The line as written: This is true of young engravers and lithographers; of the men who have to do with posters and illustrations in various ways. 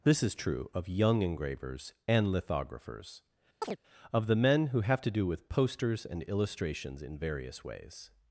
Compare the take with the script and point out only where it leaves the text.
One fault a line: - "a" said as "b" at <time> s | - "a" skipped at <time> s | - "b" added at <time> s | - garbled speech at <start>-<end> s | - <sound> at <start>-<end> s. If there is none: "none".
- chirp at 3.6-3.8 s